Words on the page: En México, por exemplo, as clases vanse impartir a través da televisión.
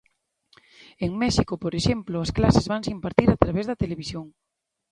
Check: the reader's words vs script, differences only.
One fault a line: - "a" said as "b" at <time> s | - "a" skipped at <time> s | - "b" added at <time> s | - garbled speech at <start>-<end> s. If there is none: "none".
none